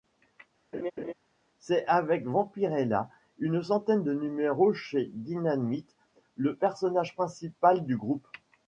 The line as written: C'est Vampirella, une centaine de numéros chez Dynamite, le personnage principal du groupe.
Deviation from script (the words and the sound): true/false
true